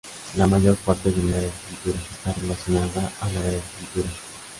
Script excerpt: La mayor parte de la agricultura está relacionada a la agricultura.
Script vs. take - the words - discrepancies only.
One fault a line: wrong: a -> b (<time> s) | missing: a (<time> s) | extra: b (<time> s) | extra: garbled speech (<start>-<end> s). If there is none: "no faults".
no faults